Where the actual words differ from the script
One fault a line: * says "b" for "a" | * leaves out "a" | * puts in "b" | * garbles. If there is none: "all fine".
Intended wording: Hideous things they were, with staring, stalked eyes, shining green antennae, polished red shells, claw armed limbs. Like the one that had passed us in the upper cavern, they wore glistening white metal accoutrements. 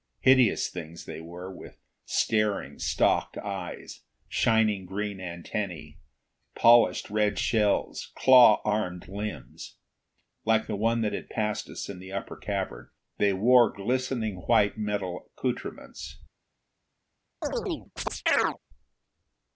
all fine